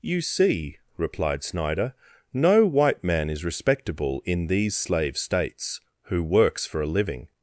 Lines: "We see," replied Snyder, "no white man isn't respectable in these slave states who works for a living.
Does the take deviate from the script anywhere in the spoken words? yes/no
yes